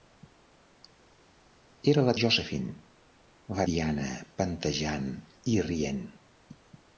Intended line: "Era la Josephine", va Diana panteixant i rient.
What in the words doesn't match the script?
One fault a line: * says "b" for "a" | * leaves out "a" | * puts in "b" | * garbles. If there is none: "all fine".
all fine